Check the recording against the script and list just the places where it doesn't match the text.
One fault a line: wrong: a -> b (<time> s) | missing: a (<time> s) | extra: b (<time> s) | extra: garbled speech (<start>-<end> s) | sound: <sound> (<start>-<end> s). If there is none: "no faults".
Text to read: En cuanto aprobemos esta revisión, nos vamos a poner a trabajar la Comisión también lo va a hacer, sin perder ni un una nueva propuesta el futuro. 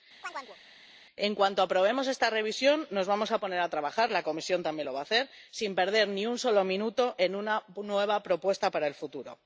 sound: chirp (0.2-0.6 s)
extra: solo minuto en (6.4 s)
extra: para (8.7 s)